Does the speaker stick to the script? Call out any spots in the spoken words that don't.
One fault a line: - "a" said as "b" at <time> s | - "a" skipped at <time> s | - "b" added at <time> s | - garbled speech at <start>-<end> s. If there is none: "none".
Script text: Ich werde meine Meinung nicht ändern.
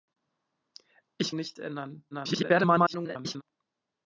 - "werde meine Meinung" skipped at 1.4 s
- garbled speech at 2.1-3.4 s